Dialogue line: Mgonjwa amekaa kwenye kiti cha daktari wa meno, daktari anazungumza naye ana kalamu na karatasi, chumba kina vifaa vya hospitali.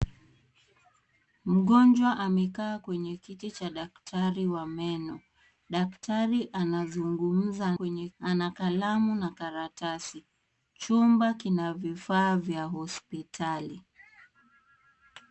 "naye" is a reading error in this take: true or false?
true